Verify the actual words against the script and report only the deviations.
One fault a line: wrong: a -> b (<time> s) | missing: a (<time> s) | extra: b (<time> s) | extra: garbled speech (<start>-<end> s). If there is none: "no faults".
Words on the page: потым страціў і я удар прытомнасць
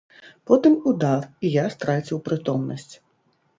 wrong: страціў -> удар (0.9 s)
wrong: удар -> страціў (1.8 s)